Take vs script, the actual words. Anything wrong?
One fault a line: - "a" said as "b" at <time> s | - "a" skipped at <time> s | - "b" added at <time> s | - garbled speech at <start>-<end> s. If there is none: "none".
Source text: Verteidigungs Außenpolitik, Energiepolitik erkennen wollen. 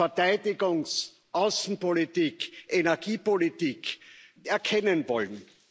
none